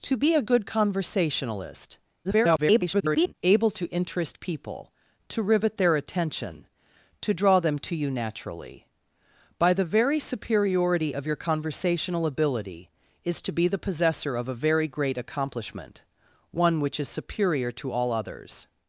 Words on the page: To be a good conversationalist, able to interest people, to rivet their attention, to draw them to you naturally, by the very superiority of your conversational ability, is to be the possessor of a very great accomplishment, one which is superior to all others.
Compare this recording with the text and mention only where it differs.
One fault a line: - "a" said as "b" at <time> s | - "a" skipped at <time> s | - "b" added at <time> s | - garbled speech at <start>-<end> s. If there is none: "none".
- garbled speech at 2.2-3.3 s